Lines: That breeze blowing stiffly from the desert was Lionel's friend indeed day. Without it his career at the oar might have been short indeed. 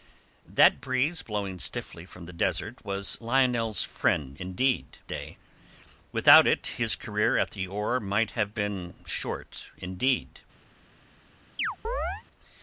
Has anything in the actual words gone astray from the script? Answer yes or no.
no